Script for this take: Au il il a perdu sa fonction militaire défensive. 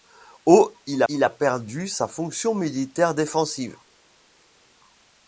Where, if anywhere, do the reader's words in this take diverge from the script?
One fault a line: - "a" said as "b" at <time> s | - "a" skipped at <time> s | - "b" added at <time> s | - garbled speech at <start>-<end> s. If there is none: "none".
none